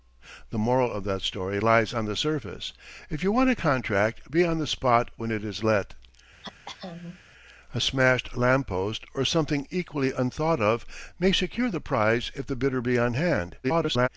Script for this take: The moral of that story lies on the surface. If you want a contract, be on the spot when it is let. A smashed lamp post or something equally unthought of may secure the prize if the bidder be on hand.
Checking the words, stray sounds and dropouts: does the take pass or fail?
fail